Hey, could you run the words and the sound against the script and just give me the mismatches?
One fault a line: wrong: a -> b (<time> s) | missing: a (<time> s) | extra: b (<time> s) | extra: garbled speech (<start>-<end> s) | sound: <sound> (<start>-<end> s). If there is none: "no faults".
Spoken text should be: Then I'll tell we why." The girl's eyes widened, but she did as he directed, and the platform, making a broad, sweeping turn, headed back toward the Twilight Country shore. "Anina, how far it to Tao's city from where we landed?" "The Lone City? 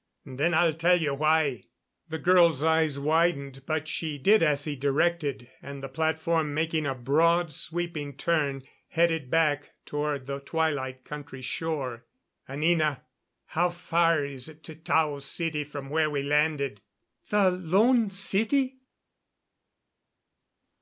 wrong: we -> you (1.0 s)
extra: is (14.2 s)